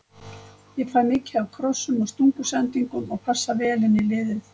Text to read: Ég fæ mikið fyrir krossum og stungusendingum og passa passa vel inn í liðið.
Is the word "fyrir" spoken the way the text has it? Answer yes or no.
no